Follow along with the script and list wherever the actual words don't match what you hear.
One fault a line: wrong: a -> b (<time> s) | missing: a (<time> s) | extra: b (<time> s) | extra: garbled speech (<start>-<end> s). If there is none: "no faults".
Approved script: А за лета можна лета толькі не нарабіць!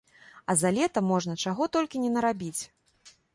wrong: лета -> чаго (1.4 s)